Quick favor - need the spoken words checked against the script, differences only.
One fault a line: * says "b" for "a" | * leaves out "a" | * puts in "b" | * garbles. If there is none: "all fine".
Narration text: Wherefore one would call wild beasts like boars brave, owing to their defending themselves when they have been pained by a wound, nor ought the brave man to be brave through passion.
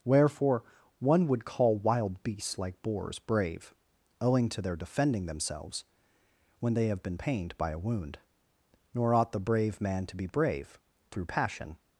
all fine